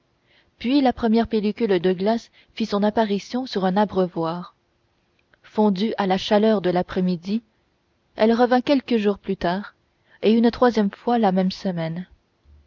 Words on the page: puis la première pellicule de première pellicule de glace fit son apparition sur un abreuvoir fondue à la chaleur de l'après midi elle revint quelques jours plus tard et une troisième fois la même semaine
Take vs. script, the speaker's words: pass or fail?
fail